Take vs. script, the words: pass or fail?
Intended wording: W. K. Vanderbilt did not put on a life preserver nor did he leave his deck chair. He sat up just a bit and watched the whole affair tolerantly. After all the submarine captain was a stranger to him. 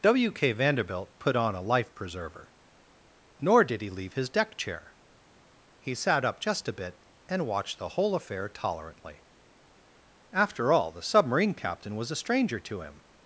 fail